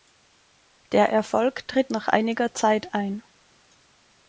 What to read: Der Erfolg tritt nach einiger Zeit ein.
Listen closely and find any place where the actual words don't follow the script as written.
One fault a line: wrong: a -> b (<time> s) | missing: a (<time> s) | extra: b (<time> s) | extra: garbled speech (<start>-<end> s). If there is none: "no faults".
no faults